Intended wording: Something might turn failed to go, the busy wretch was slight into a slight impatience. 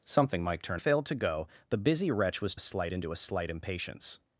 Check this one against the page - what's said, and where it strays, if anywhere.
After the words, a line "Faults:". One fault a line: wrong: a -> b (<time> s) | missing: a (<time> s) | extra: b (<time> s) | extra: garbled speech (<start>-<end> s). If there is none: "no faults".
Something might turn failed to go, the busy wretch was slight into a slight impatience.
Faults:
no faults